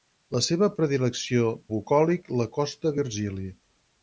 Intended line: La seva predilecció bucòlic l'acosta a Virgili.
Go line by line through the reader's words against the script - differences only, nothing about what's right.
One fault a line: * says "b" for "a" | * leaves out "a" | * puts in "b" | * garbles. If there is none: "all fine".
all fine